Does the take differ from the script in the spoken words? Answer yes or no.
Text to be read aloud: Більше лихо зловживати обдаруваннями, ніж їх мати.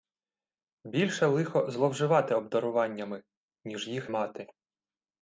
no